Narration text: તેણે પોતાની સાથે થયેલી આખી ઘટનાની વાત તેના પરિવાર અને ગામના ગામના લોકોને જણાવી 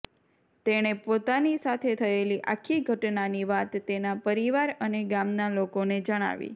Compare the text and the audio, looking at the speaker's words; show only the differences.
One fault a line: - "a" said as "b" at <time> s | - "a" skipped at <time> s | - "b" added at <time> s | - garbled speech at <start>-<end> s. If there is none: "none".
- "ગામના" skipped at 5.5 s